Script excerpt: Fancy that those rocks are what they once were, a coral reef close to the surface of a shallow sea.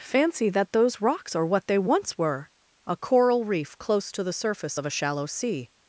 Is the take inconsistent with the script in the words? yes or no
no